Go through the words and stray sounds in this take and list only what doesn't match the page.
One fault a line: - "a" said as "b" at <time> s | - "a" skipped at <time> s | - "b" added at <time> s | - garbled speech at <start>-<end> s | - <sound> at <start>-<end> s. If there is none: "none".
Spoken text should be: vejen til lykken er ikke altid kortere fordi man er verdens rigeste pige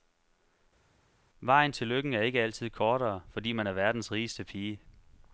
none